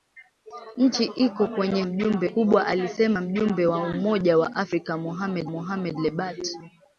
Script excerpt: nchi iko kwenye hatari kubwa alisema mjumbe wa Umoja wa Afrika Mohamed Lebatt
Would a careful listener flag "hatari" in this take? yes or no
yes